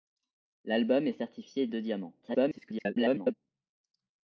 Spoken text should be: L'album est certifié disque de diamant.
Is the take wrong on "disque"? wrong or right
wrong